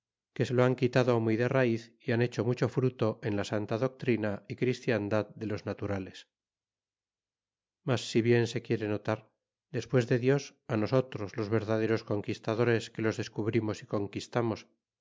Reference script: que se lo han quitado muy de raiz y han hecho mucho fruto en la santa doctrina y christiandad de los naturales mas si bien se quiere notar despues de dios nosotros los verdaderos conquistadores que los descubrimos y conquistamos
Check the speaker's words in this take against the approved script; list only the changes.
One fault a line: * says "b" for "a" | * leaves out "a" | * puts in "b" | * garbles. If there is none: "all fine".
all fine